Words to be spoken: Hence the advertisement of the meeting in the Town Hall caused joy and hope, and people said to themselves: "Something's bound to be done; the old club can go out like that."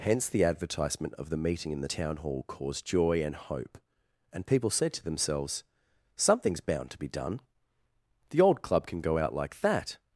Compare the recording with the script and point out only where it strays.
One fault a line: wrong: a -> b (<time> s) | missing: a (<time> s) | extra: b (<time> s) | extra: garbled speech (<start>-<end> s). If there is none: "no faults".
no faults